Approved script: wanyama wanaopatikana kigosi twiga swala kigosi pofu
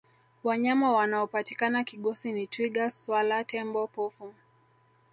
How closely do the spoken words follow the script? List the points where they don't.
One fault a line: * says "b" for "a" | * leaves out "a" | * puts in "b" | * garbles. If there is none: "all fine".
* puts in "ni"
* says "tembo" for "kigosi"